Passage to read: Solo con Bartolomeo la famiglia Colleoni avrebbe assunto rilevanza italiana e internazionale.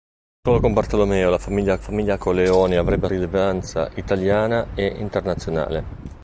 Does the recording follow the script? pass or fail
fail